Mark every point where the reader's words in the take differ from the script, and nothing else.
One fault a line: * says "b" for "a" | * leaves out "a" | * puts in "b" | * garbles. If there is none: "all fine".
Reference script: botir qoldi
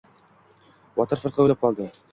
* puts in "firqa o‘ylab"